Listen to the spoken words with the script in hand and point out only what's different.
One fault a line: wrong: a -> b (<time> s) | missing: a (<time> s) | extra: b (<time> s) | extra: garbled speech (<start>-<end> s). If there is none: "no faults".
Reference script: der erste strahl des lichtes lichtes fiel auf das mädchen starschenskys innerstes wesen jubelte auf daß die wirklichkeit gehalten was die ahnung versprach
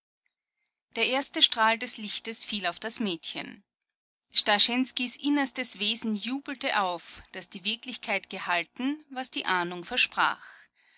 missing: lichtes (2.4 s)